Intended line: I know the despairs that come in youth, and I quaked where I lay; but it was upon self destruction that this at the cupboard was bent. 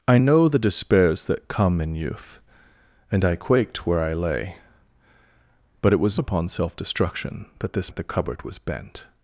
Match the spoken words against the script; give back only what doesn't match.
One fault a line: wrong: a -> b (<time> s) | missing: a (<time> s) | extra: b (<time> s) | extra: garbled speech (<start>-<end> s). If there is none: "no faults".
no faults